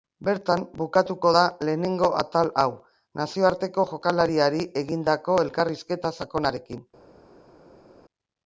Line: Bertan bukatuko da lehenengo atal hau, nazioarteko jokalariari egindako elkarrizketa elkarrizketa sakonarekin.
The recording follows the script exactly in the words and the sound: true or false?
false